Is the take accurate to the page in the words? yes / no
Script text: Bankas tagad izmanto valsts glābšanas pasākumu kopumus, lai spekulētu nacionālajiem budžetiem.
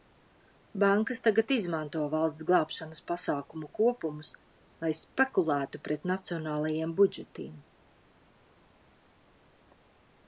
no